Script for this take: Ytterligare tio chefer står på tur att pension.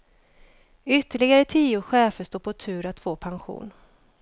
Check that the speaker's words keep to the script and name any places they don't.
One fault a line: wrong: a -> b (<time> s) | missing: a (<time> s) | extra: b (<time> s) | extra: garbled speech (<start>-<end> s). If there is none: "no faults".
extra: få (3.0 s)